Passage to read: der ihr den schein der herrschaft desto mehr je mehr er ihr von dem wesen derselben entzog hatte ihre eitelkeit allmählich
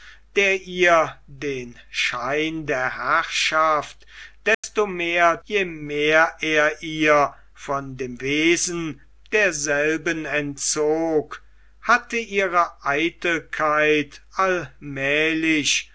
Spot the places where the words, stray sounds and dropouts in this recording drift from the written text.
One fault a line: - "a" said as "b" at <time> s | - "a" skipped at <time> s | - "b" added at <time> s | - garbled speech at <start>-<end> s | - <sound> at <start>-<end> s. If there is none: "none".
- dropout at 4.5-4.6 s